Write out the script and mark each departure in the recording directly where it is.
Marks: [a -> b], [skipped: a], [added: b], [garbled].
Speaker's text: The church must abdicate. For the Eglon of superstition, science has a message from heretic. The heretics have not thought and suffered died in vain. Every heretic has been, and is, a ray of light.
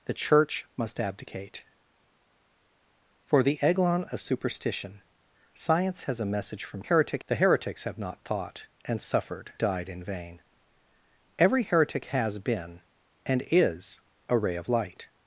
The church must abdicate. For the Eglon of superstition, science has a message from heretic. The heretics have not thought and suffered died in vain. Every heretic has been, and is, a ray of light.